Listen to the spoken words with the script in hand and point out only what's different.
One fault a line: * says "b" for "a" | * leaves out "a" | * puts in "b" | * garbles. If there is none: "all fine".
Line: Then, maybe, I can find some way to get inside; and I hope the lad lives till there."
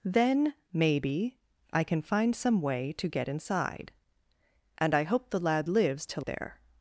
all fine